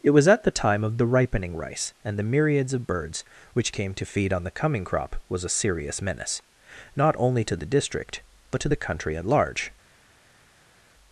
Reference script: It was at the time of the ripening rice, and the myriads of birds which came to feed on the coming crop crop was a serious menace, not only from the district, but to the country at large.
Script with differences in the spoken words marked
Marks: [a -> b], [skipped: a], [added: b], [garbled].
It was at the time of the ripening rice, and the myriads of birds which came to feed on the coming crop [skipped: crop] was a serious menace, not only [from -> to] the district, but to the country at large.